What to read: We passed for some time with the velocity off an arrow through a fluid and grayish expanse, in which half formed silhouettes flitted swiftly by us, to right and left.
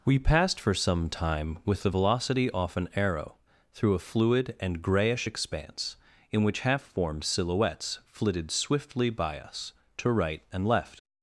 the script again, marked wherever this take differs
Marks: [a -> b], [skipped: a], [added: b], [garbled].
We passed for some time with the velocity off an arrow through a fluid and grayish expanse, in which half formed silhouettes flitted swiftly by us, to right and left.